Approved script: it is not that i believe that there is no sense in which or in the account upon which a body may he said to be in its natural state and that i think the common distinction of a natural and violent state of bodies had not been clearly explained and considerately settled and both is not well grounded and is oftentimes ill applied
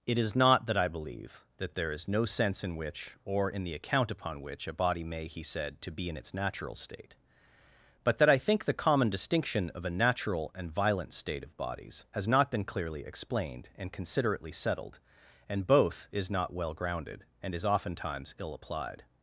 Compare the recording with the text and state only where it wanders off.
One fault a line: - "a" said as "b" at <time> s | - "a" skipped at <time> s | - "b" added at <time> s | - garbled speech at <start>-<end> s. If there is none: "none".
- "and" said as "but" at 8.0 s
- "had" said as "has" at 12.1 s